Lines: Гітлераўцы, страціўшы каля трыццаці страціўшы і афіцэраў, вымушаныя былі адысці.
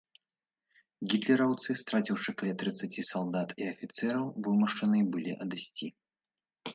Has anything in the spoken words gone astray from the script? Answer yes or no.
yes